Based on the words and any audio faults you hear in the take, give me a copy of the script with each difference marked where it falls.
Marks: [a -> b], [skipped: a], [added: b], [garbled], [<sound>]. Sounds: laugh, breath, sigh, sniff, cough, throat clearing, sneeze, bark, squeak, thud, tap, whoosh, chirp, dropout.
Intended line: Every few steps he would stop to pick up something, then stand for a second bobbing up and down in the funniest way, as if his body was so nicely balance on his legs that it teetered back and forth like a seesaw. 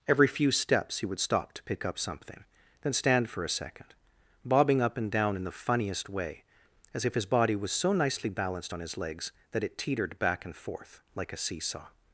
Every few steps he would stop to pick up something, then stand for a second bobbing up and down in the funniest way, as if his body was so nicely [balance -> balanced] on his legs that it teetered back and forth like a seesaw.